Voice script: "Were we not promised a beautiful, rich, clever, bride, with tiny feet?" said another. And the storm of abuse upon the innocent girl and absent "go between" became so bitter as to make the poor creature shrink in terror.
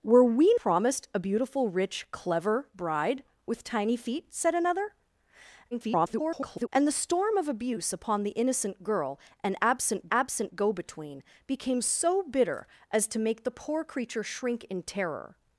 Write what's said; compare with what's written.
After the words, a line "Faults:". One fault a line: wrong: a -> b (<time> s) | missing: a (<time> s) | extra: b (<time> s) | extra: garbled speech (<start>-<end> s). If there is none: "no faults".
"Were we promised a beautiful, rich, clever, bride, with tiny feet?" said another. [garbled] And the storm of abuse upon the innocent girl and absent absent "go between" became so bitter as to make the poor creature shrink in terror.
Faults:
missing: not (0.5 s)
extra: garbled speech (5.7-6.7 s)
extra: absent (10.1 s)